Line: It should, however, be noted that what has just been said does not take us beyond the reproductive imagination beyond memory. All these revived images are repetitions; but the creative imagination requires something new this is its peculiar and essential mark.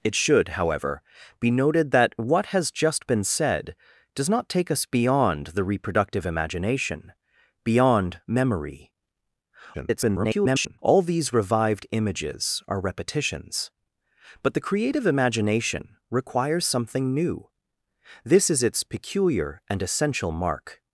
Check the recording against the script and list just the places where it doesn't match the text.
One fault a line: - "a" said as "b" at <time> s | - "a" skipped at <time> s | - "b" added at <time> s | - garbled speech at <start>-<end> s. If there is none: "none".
- garbled speech at 9.7-10.8 s